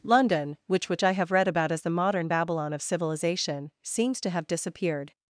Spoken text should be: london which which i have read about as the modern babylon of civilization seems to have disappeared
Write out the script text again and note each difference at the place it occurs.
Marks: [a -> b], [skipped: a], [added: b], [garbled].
london which which i have read about as the modern babylon of civilization seems to have disappeared